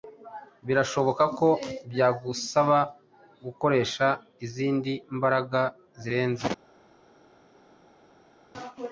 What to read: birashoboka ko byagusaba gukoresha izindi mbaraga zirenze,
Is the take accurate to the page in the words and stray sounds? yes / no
yes